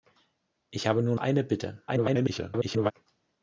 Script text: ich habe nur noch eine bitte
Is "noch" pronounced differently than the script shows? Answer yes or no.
yes